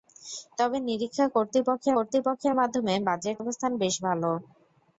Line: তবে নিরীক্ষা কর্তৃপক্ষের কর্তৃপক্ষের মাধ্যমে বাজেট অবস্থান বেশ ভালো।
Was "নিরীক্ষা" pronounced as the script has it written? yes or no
yes